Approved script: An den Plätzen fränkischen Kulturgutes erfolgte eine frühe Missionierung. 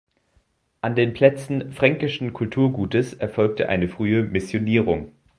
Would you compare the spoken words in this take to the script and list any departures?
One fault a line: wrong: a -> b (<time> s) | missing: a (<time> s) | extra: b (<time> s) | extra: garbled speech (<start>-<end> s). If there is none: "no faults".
no faults